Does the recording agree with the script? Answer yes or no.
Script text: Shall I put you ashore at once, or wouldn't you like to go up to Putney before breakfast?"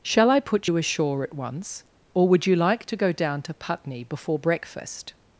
no